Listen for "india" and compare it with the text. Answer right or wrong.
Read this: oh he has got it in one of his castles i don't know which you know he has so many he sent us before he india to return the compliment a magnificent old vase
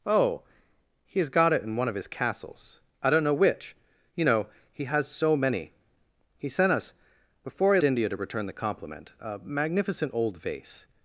right